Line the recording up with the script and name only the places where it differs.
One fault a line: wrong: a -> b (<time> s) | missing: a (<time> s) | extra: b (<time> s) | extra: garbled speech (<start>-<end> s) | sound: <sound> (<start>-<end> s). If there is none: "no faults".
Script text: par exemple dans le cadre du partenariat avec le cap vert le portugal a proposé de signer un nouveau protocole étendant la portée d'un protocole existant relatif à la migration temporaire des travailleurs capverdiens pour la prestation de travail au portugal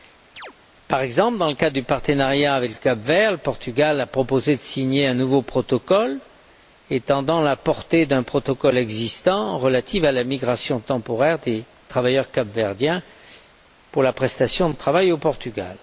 sound: chirp (0.4-0.5 s)